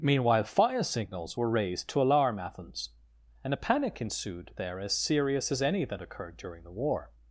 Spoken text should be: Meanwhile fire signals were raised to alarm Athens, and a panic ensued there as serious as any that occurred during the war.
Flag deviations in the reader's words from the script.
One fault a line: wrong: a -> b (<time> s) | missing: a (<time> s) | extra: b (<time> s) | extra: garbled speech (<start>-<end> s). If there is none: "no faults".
no faults